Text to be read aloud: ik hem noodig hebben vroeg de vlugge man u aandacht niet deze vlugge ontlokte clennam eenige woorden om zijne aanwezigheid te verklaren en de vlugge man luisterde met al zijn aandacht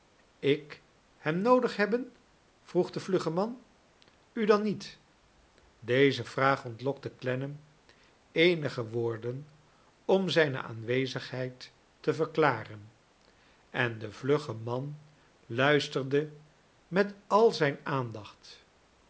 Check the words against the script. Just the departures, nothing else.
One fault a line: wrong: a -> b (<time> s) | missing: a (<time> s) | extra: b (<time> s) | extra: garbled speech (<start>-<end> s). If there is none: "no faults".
wrong: aandacht -> dan (4.5 s)
wrong: vlugge -> vraag (6.2 s)